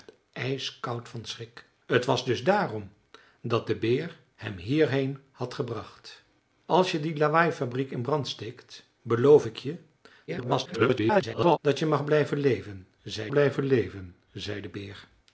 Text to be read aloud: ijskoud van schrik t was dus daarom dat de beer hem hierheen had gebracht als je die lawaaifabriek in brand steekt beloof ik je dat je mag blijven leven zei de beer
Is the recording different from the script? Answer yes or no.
yes